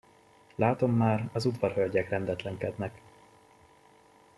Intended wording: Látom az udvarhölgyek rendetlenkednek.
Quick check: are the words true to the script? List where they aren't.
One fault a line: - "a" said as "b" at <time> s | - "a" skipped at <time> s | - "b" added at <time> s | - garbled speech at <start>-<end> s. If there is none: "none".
- "már" added at 0.9 s